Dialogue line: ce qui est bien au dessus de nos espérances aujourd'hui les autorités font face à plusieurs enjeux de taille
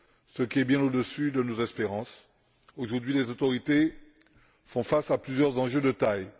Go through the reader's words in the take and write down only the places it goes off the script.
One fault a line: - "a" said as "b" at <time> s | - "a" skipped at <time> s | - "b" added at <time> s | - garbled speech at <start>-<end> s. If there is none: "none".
none